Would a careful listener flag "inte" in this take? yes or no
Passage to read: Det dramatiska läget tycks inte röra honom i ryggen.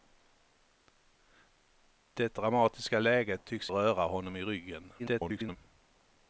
yes